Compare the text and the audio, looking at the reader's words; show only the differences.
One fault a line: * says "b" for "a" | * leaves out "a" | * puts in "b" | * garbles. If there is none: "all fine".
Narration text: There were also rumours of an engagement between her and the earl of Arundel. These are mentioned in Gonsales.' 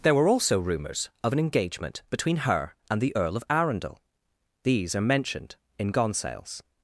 all fine